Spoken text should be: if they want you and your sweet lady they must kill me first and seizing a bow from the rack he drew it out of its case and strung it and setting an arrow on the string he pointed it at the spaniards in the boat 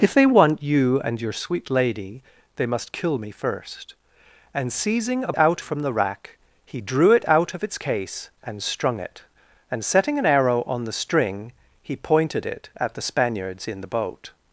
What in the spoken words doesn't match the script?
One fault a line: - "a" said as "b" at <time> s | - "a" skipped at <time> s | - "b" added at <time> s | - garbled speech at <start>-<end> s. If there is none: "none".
- "bow" said as "out" at 5.4 s